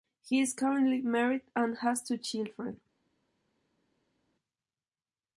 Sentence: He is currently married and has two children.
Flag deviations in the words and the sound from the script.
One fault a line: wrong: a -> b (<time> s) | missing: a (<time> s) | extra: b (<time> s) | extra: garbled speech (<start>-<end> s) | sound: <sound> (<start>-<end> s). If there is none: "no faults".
no faults